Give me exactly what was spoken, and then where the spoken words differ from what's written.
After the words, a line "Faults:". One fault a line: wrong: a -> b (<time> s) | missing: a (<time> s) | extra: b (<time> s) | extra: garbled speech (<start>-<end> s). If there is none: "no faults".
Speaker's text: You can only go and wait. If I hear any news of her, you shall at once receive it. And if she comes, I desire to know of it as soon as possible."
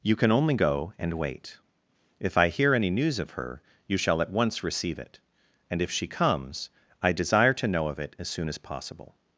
You can only go and wait. If I hear any news of her, you shall at once receive it. And if she comes, I desire to know of it as soon as possible."
Faults:
no faults